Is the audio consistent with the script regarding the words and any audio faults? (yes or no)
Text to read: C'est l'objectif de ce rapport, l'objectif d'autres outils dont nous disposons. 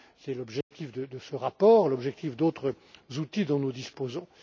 no